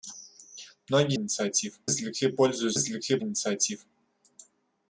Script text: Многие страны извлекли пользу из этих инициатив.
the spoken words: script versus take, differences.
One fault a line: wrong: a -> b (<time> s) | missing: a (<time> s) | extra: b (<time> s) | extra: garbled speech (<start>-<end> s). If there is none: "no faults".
wrong: страны -> инициатив (1.1 s)
wrong: этих -> извлекли (2.7 s)